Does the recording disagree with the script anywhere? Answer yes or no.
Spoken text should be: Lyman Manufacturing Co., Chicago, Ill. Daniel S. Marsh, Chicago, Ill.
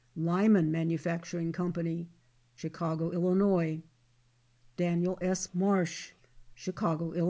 no